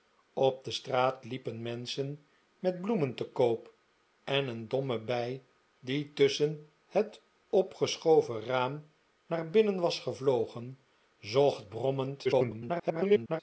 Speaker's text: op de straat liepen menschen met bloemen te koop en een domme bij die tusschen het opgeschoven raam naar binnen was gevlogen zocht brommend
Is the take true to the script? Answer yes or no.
no